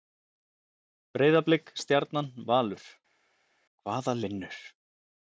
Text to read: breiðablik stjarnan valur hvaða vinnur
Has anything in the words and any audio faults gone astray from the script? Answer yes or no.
no